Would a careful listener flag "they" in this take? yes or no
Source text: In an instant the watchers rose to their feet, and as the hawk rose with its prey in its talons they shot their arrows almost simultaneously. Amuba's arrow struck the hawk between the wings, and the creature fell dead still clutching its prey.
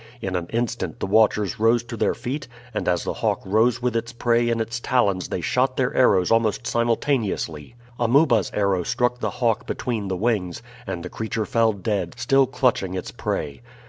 no